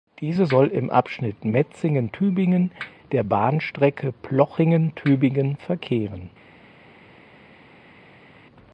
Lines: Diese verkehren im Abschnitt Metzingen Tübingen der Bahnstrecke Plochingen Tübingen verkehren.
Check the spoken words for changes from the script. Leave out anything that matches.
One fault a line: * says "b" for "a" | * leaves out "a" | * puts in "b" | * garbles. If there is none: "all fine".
* says "soll" for "verkehren"